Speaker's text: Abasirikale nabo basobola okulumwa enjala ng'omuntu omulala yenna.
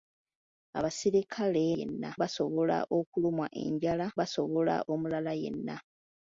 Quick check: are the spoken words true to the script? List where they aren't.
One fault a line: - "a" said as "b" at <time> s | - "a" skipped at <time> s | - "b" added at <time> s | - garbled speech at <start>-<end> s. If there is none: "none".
- "nabo" said as "yenna" at 1.8 s
- "ng'omuntu" said as "basobola" at 4.2 s